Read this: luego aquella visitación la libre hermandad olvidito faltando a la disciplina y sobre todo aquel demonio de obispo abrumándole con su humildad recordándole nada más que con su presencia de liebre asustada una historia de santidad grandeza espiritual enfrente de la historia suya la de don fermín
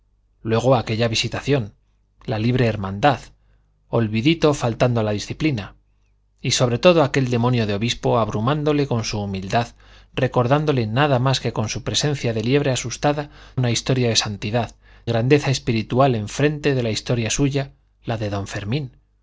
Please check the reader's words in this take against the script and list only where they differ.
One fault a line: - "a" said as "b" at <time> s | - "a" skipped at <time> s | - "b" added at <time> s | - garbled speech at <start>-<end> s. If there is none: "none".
none